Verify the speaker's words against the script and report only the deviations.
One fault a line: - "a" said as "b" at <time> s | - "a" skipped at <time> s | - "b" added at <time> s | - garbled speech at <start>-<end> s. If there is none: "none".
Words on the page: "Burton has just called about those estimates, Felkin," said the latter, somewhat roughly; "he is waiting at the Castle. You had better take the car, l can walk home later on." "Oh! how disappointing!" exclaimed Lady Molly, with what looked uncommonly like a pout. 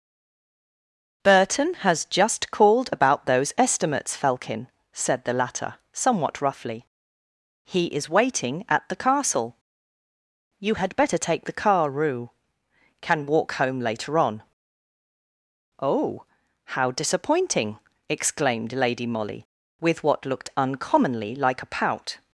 - "l" said as "rue" at 11.9 s